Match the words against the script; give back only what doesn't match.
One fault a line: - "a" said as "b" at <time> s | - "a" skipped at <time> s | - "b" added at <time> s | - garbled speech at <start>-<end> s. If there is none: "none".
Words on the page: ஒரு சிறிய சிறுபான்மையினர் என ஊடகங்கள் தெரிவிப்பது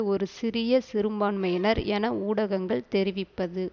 none